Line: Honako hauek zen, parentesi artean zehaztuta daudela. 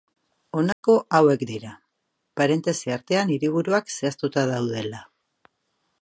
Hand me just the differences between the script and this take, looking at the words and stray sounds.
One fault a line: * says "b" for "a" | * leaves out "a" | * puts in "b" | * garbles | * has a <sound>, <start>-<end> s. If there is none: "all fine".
* has a dropout, 0.7-0.8 s
* says "dira" for "zen"
* puts in "hiriburuak"